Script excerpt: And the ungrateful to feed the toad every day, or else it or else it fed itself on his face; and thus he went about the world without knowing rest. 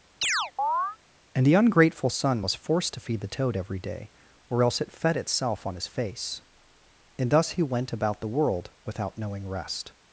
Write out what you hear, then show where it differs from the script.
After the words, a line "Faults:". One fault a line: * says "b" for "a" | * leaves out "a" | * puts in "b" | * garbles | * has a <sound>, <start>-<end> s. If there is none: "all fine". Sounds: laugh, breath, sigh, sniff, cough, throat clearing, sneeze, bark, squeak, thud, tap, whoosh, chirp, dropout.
And the ungrateful son was forced to feed the toad every day, or else it fed itself on his face; and thus he went about the world without knowing rest.
Faults:
* has a chirp, 0.2-1.0 s
* puts in "son was forced"
* leaves out "or else it"